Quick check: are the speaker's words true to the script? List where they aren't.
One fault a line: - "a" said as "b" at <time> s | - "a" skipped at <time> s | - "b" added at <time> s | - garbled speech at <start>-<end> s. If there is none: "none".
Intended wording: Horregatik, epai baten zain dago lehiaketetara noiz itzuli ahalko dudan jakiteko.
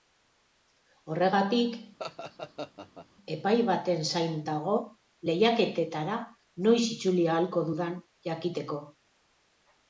none